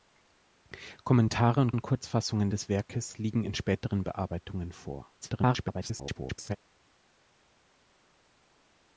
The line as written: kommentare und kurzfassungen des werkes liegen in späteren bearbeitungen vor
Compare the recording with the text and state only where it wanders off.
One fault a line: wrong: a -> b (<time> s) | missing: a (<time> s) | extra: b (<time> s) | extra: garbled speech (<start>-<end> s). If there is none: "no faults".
extra: und (1.7 s)
extra: garbled speech (5.2-6.6 s)